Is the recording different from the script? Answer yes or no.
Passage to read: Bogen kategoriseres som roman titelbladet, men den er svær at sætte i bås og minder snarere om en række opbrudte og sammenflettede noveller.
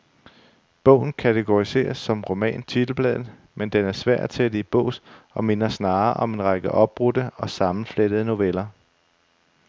no